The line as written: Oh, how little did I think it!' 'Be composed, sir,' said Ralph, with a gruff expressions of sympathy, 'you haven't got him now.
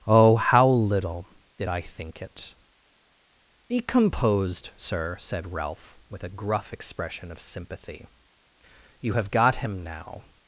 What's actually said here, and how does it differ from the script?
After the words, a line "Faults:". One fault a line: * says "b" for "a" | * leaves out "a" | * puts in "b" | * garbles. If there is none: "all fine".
Oh, how little did I think it!' 'Be composed, sir,' said Ralph, with a gruff expression of sympathy, 'you have got him now.
Faults:
* says "expression" for "expressions"
* says "have" for "haven't"